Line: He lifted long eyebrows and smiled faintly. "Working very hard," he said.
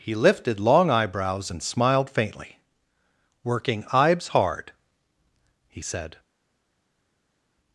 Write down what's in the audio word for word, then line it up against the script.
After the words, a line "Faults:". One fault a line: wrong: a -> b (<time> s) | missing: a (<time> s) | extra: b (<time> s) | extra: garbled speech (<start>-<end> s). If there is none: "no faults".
He lifted long eyebrows and smiled faintly. "Working ibes hard," he said.
Faults:
wrong: very -> ibes (3.9 s)